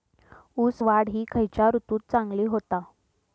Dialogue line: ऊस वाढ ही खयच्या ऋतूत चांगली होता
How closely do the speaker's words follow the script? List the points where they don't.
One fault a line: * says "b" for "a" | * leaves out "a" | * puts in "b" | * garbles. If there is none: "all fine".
all fine